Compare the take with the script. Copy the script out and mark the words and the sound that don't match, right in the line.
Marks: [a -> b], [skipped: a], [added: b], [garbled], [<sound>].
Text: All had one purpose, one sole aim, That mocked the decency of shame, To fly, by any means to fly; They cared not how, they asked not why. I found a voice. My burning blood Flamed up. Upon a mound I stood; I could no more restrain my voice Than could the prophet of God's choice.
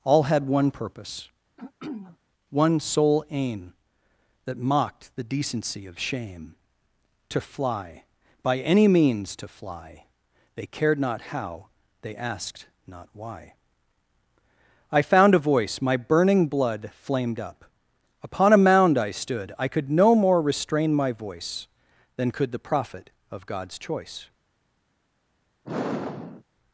All had one purpose, [throat clearing] one sole aim, That mocked the decency of shame, To fly, by any means to fly; They cared not how, they asked not why. I found a voice. My burning blood Flamed up. Upon a mound I stood; I could no more restrain my voice Than could the prophet of God's choice. [sigh]